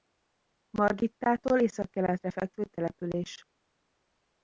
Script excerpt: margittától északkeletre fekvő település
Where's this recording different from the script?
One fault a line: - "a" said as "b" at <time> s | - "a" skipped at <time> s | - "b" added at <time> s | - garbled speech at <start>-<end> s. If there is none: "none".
none